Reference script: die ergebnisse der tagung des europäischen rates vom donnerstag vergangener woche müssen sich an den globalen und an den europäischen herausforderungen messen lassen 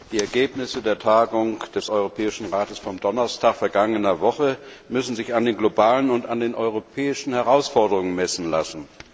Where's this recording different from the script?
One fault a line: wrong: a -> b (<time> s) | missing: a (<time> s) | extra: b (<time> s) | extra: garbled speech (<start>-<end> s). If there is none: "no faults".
no faults